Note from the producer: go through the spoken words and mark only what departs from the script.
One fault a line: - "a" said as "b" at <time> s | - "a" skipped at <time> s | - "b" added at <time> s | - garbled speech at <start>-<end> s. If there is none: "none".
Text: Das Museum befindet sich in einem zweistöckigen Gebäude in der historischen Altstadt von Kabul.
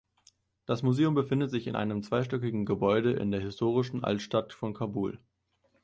none